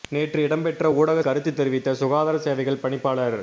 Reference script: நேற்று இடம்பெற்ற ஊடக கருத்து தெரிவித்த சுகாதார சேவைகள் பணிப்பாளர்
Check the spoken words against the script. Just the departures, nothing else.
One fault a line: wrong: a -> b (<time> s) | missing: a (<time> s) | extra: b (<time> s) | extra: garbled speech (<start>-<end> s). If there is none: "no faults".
no faults